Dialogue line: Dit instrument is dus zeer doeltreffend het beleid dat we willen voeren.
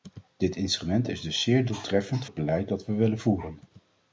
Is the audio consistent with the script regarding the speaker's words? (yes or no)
yes